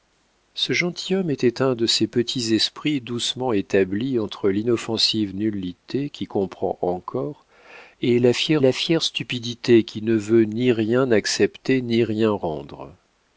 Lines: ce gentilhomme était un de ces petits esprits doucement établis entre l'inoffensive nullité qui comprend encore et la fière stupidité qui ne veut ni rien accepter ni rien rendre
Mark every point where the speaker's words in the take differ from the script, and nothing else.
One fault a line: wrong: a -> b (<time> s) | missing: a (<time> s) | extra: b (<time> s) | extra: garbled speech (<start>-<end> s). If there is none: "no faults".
extra: la fière (8.6 s)